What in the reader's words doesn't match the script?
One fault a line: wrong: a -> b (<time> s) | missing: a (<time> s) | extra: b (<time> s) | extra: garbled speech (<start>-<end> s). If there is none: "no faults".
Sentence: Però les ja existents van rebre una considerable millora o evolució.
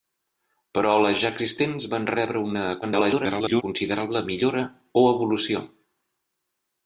extra: garbled speech (2.8-3.6 s)